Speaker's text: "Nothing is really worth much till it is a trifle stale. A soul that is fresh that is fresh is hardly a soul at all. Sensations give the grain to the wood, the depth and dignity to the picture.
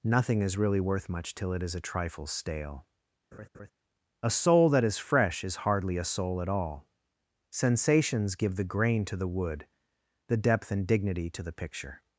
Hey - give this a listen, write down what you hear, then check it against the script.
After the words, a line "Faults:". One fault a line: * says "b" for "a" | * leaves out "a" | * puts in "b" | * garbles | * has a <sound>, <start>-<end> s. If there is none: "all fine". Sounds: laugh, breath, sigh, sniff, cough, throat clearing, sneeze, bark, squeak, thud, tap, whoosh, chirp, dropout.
"Nothing is really worth much till it is a trifle stale. A soul that is fresh is hardly a soul at all. Sensations give the grain to the wood, the depth and dignity to the picture.
Faults:
* has a laugh, 3.3-3.7 s
* leaves out "that is fresh"